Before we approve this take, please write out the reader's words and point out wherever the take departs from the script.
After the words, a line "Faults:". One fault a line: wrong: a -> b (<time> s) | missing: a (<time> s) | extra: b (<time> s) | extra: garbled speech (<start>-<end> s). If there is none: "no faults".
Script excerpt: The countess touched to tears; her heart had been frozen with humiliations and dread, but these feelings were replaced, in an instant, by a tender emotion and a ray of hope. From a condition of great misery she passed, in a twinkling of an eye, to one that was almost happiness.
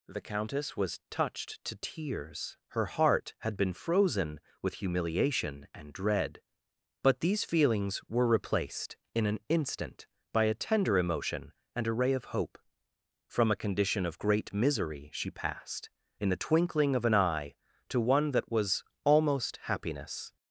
The countess was touched to tears; her heart had been frozen with humiliation and dread, but these feelings were replaced, in an instant, by a tender emotion and a ray of hope. From a condition of great misery she passed, in the twinkling of an eye, to one that was almost happiness.
Faults:
extra: was (0.8 s)
wrong: humiliations -> humiliation (4.8 s)
wrong: a -> the (16.3 s)